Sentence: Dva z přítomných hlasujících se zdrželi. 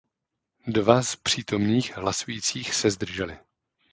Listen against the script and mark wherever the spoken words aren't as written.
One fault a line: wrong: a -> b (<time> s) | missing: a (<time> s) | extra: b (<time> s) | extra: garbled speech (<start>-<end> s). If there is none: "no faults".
no faults